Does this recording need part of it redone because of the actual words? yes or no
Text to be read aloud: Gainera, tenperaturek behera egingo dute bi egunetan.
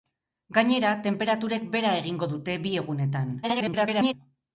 yes